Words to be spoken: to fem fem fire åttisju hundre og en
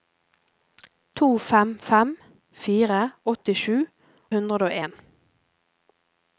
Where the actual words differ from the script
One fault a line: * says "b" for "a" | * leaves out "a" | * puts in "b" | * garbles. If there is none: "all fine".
all fine